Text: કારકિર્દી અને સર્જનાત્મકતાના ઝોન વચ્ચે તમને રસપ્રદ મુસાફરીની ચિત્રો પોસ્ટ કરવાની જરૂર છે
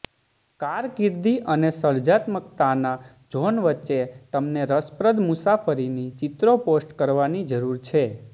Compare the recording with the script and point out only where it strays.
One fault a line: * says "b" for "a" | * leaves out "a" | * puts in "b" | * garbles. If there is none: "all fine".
all fine